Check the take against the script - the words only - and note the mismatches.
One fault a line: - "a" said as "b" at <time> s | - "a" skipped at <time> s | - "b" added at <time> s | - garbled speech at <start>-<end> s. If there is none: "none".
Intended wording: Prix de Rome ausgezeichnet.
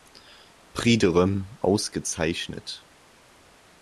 none